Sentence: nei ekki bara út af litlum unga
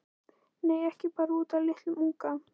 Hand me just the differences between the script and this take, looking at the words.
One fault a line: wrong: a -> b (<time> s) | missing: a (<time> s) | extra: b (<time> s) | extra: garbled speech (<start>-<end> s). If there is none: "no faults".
no faults